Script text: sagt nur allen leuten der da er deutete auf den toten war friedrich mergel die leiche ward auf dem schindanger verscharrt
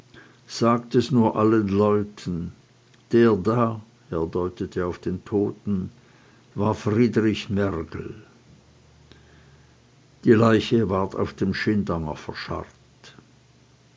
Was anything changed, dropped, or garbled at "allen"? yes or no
no